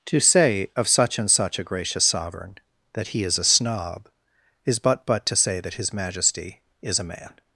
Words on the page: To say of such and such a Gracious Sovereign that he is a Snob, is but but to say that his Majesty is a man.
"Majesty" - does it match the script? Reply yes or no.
yes